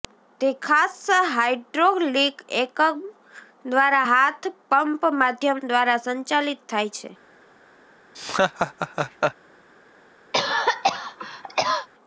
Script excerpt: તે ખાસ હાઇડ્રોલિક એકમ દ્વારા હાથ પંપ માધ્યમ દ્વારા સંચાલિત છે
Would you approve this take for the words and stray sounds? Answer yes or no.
no